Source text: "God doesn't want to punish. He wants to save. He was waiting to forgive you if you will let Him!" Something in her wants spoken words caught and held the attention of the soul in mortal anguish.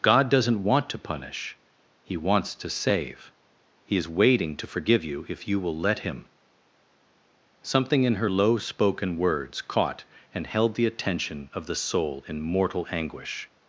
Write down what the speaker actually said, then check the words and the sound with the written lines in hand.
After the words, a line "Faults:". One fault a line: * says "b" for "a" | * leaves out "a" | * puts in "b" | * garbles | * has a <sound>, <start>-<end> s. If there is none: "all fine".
"God doesn't want to punish. He wants to save. He is waiting to forgive you if you will let Him!" Something in her low spoken words caught and held the attention of the soul in mortal anguish.
Faults:
* says "is" for "was"
* says "low" for "wants"